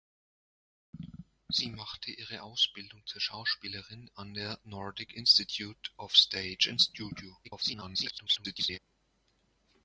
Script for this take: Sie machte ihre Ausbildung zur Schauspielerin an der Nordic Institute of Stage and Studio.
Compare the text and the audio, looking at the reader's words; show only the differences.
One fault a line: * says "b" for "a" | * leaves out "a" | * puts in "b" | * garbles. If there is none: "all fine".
* garbles